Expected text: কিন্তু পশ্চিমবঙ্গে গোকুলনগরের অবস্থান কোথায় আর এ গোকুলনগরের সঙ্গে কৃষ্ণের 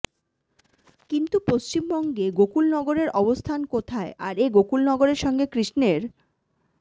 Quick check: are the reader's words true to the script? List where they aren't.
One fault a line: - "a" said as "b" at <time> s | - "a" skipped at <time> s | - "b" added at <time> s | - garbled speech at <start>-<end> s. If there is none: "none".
none